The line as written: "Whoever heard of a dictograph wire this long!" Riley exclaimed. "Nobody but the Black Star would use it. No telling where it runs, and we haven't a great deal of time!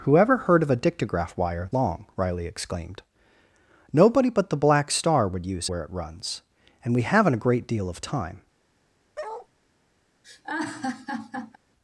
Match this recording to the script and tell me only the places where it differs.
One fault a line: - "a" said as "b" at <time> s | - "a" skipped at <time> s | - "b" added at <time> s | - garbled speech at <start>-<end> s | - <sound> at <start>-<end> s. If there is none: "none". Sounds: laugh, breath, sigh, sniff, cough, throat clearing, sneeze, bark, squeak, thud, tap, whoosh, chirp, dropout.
- "this" skipped at 1.7 s
- "it No telling" skipped at 5.7 s
- bark at 9.2-9.5 s
- laugh at 10.2-11.6 s